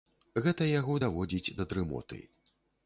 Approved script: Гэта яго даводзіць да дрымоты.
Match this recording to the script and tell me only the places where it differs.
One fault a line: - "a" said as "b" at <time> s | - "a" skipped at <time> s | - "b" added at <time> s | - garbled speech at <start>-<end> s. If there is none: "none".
none